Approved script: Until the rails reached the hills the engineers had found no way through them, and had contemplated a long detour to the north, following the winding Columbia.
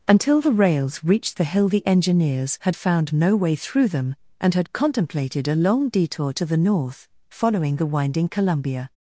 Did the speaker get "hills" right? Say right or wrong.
wrong